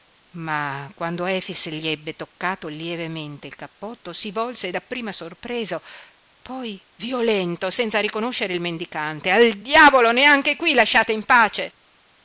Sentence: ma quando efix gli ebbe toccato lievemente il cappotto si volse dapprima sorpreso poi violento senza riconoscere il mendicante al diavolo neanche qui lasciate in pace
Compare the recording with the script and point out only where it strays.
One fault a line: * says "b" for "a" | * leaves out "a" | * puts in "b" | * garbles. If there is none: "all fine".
all fine